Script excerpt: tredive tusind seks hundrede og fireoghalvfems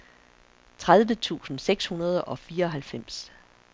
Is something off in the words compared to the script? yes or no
no